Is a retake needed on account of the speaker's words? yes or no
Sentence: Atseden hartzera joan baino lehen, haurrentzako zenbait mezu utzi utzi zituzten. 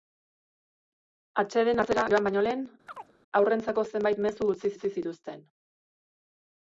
no